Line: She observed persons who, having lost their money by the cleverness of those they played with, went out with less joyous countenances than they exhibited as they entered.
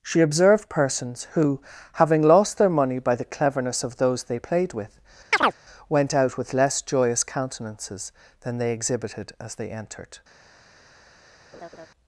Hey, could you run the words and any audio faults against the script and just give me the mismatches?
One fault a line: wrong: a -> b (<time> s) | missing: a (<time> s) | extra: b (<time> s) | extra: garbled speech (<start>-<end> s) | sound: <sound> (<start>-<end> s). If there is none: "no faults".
sound: chirp (5.3-5.6 s)
sound: laugh (11.5-11.9 s)